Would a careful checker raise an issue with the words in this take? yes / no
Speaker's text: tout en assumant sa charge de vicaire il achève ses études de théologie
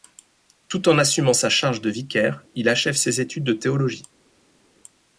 no